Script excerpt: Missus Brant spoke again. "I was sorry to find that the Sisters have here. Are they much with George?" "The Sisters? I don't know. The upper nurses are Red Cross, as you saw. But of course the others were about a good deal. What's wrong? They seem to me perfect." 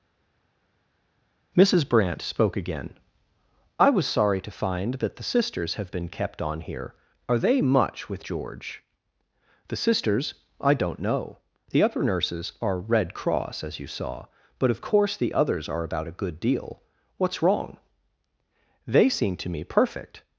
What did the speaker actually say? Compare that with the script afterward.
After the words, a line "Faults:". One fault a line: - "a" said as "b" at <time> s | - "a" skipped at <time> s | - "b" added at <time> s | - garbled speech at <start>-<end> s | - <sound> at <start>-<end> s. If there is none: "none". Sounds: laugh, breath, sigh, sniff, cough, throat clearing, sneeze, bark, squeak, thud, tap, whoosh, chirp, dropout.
Missus Brant spoke again. "I was sorry to find that the Sisters have been kept on here. Are they much with George?" "The Sisters? I don't know. The upper nurses are Red Cross, as you saw. But of course the others are about a good deal. What's wrong? They seem to me perfect."
Faults:
- "been kept on" added at 5.9 s
- "were" said as "are" at 15.7 s